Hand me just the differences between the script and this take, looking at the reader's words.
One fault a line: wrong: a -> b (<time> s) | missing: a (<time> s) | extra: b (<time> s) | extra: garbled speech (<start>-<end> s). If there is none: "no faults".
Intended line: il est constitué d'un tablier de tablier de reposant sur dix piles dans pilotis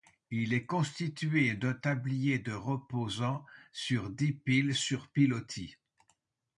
missing: tablier de (2.5 s)
wrong: dans -> sur (4.7 s)